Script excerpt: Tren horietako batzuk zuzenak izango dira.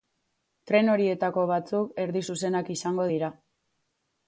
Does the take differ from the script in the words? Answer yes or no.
yes